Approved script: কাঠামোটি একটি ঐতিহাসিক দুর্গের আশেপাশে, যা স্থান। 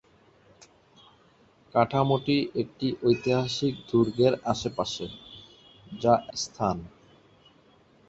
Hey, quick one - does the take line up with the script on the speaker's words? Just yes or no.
yes